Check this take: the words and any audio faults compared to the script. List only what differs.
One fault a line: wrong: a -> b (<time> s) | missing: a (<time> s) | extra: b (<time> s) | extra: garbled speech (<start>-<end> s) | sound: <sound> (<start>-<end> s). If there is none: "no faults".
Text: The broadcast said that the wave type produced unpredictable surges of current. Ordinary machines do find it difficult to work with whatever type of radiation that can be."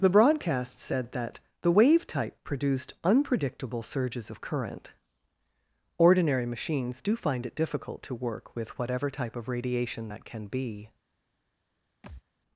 sound: thud (12.0-12.2 s)